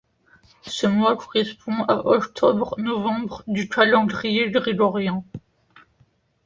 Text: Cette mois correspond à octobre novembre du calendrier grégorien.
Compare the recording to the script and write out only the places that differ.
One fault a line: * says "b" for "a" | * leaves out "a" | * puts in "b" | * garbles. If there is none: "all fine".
* says "Ce" for "Cette"